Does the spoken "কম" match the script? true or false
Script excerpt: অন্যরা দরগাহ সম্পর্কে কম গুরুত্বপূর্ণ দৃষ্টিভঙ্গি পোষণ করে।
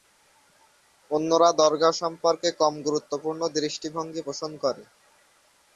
true